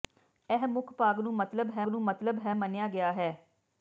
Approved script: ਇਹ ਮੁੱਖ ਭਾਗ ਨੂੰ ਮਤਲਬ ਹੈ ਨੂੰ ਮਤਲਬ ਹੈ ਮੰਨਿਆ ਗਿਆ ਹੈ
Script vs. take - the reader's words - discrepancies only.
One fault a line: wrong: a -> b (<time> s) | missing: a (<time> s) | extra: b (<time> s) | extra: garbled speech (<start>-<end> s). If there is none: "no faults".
no faults